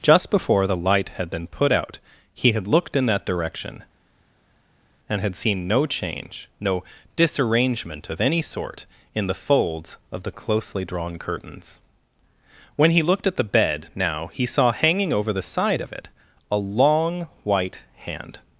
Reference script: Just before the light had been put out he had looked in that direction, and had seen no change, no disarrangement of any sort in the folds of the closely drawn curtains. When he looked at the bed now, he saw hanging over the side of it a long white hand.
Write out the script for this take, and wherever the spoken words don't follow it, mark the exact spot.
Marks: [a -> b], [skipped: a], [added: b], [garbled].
Just before the light had been put out he had looked in that direction, and had seen no change, no disarrangement of any sort in the folds of the closely drawn curtains. When he looked at the bed now, he saw hanging over the side of it a long white hand.